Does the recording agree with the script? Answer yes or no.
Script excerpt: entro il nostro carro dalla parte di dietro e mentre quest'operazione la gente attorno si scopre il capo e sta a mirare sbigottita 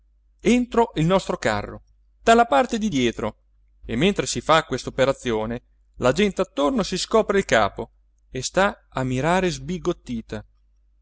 no